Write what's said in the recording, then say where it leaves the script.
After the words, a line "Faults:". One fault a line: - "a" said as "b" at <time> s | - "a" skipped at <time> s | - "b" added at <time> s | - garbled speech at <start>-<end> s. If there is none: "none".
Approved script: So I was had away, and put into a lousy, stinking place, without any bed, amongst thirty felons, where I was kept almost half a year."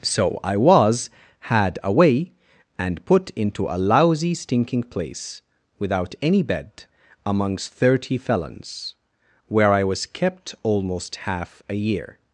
So I was had away, and put into a lousy, stinking place, without any bed, amongst thirty felons, where I was kept almost half a year."
Faults:
none